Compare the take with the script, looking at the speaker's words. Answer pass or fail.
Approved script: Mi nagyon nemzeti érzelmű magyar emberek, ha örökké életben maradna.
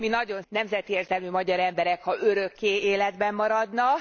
pass